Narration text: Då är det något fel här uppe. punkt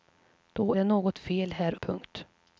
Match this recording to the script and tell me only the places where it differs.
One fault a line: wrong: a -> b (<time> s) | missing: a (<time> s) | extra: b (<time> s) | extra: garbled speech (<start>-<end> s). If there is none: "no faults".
missing: är (0.7 s)
missing: uppe (1.8 s)